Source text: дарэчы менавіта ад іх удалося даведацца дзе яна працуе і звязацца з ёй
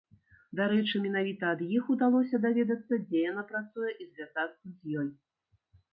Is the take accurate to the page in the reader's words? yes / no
yes